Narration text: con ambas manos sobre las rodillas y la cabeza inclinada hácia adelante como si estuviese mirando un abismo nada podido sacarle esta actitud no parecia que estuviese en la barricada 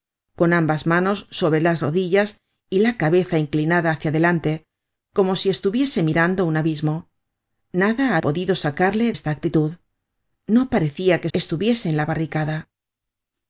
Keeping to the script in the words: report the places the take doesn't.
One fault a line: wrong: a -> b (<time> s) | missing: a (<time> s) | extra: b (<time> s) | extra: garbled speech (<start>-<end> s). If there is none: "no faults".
no faults